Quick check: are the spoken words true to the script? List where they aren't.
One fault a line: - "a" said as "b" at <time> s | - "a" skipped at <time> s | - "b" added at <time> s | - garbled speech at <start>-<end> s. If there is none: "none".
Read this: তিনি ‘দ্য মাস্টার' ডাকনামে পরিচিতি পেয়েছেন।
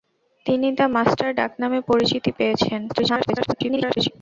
- garbled speech at 2.9-4.1 s